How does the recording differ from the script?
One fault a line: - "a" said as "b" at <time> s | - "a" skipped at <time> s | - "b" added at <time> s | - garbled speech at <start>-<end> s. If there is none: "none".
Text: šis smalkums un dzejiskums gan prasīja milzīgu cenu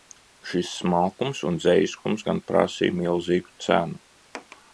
none